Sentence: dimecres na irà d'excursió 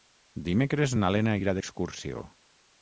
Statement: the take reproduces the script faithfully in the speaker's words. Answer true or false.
false